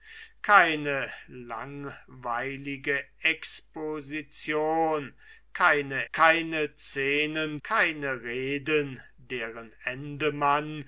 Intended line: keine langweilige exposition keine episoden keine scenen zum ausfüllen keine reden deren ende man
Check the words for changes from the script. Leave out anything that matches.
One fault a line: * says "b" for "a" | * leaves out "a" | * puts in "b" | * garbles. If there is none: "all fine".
* leaves out "episoden"
* leaves out "zum ausfüllen"